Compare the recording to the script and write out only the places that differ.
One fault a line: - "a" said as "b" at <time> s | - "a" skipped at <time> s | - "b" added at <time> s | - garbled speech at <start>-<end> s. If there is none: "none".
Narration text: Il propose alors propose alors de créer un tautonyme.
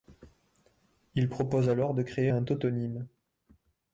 - "propose alors" skipped at 1.9 s